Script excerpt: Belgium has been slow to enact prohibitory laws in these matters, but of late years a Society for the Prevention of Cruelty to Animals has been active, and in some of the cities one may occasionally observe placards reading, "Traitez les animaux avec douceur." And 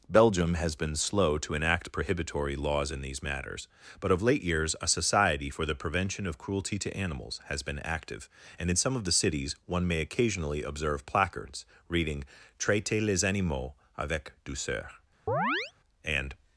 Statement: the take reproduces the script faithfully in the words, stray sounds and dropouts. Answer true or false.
false